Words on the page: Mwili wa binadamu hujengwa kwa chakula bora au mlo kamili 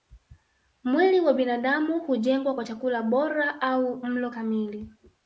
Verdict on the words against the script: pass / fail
pass